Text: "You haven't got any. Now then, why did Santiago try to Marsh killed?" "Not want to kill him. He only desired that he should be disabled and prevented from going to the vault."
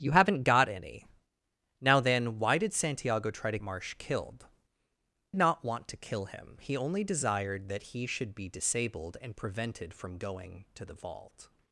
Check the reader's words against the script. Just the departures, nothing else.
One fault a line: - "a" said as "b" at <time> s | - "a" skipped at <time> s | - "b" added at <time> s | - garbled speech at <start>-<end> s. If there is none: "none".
none